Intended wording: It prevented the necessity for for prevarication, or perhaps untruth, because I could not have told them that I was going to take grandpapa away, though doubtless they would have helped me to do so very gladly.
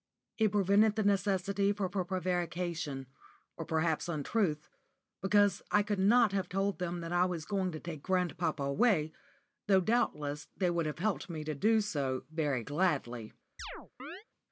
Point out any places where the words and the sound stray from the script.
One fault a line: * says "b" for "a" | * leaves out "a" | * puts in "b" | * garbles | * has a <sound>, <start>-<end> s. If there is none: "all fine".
* has a chirp, 13.6-14.2 s